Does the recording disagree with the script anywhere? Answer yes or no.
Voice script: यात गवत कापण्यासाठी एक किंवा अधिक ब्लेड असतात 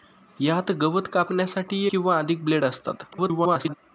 yes